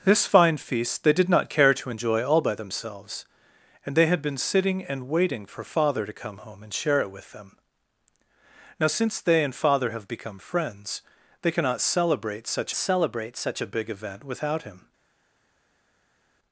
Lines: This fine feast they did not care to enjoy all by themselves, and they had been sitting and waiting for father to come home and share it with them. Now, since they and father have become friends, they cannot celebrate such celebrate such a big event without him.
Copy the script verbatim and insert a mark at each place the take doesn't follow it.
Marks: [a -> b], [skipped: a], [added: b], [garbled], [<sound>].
This fine feast they did not care to enjoy all by themselves, and they had been sitting and waiting for father to come home and share it with them. Now, since they and father have become friends, they cannot celebrate such celebrate such a big event without him.